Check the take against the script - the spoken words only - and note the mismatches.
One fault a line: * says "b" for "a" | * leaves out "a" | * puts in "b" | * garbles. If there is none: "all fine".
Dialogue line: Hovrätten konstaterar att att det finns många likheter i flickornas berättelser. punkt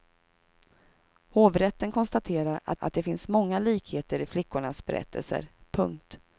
all fine